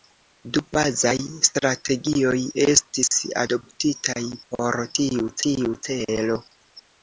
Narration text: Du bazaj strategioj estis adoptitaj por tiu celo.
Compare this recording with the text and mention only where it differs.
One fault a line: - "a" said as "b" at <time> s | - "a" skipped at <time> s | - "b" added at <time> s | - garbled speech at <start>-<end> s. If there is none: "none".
- "tiu" added at 5.5 s